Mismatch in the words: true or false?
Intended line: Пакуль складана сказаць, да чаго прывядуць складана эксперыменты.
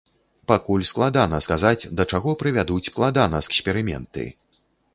false